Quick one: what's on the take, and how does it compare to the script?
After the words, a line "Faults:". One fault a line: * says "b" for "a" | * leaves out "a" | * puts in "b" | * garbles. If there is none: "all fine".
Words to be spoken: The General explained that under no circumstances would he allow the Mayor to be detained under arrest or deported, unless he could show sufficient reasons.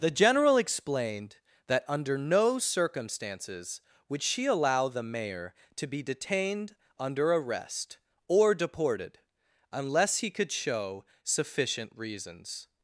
The General explained that under no circumstances would she allow the Mayor to be detained under arrest or deported, unless he could show sufficient reasons.
Faults:
* says "she" for "he"